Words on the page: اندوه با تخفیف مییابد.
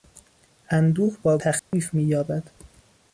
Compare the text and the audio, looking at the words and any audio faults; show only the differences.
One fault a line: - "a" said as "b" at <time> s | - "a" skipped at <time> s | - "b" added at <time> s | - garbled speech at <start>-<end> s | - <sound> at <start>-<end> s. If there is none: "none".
- dropout at 1.6-1.7 s